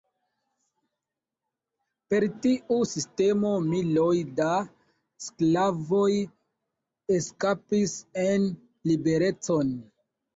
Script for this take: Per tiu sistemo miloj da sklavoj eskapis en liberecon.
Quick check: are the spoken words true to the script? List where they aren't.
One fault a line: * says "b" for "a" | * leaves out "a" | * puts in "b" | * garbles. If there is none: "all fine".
all fine